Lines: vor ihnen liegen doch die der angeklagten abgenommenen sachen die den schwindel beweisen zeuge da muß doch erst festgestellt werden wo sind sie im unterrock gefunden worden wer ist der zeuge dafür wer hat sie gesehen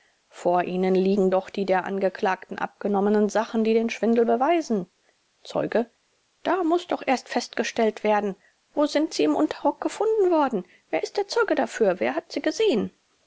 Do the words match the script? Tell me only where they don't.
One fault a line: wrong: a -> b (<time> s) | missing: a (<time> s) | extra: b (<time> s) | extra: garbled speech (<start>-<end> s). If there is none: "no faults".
no faults